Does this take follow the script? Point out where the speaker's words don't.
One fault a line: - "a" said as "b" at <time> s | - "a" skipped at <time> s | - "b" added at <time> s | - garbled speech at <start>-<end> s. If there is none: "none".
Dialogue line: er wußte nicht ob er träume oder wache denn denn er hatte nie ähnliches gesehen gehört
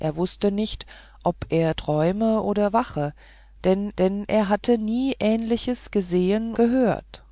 none